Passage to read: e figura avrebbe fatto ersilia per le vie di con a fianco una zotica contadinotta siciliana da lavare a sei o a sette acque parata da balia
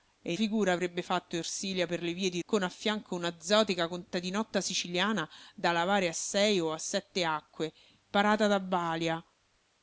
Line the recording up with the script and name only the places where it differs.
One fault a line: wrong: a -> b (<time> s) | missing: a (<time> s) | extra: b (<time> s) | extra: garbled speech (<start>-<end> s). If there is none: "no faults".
no faults